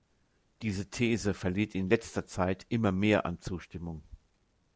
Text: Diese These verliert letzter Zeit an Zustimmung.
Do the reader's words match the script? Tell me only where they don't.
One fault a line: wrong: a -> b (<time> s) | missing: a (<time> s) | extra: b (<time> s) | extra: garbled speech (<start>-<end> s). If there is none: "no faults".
extra: in (1.8 s)
extra: immer mehr (2.7 s)